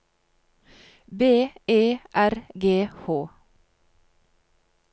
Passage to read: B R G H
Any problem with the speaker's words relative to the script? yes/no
yes